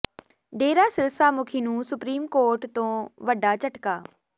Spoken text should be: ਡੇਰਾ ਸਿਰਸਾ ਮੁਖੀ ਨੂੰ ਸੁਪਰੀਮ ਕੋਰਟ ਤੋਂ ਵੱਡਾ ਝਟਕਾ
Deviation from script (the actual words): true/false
false